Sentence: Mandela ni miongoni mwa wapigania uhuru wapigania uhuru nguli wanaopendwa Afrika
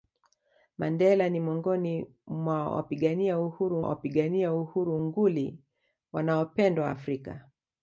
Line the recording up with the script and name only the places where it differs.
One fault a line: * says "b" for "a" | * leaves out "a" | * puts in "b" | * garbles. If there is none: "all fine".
all fine